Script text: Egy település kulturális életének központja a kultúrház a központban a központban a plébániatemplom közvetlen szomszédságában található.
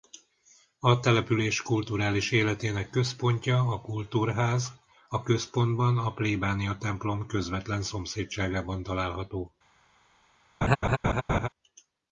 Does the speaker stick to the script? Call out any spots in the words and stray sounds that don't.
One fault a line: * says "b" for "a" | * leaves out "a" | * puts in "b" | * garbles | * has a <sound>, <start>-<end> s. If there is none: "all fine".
* says "A" for "Egy"
* leaves out "központban a"
* has a laugh, 10.6-11.5 s